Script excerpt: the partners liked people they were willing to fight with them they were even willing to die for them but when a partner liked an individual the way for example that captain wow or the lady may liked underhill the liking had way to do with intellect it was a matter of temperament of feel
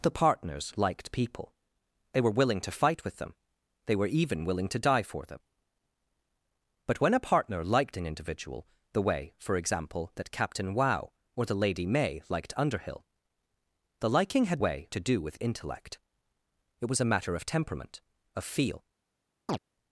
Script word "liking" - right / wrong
right